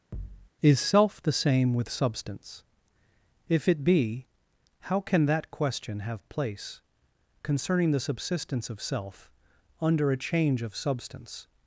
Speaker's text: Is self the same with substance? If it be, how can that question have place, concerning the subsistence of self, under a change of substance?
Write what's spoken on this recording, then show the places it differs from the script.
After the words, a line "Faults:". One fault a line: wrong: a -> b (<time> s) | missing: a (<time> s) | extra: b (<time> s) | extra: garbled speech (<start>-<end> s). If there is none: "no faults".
Is self the same with substance? If it be, how can that question have place, concerning the subsistence of self, under a change of substance?
Faults:
no faults